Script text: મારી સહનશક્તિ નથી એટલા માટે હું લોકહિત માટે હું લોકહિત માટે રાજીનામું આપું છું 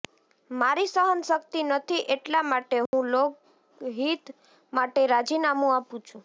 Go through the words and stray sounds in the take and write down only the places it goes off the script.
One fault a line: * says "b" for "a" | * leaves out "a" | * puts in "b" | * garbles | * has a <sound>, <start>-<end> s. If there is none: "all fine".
* has a dropout, 2.9-2.9 s
* leaves out "હું લોકહિત માટે"